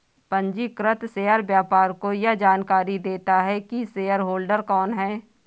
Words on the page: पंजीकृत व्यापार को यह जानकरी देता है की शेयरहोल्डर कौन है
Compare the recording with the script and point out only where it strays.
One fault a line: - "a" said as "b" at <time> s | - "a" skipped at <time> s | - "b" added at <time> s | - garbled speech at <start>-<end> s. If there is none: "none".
- "शेयर" added at 1.1 s